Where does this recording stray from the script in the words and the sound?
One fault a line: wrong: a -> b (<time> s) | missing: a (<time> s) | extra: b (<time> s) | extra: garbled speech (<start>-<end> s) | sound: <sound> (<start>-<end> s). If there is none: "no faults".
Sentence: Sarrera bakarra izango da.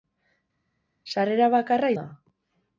missing: izango (1.9 s)